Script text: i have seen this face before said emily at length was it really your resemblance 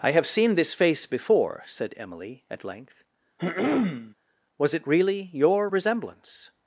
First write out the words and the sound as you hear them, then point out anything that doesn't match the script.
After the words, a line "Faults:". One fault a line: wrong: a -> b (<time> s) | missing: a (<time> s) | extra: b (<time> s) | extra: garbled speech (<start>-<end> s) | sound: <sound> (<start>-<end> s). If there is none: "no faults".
i have seen this face before said emily at length was it really your resemblance
Faults:
sound: throat clearing (3.4-4.1 s)